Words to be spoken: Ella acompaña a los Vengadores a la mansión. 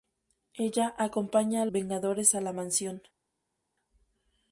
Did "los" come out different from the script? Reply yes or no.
yes